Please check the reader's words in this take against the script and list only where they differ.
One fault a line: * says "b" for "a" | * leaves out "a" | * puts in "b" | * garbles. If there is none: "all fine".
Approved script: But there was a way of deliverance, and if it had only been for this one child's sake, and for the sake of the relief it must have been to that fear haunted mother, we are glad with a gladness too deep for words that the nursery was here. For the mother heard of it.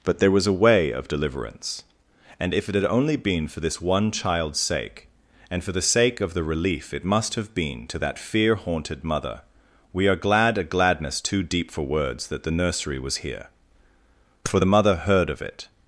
* leaves out "with"